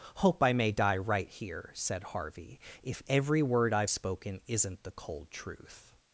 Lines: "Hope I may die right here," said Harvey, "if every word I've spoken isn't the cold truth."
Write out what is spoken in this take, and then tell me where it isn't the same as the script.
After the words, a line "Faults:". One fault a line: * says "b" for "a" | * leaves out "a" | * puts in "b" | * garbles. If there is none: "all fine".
"Hope I may die right here," said Harvey, "if every word I've spoken isn't the cold truth."
Faults:
all fine